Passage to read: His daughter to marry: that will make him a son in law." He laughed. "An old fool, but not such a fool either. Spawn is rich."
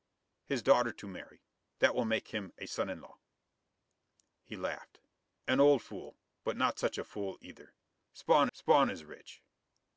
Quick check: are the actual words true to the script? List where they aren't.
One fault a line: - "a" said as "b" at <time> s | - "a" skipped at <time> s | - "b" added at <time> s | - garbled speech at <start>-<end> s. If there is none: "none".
- "spawn" added at 8.5 s